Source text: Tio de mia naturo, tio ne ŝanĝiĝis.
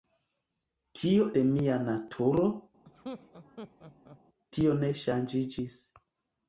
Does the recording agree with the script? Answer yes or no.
yes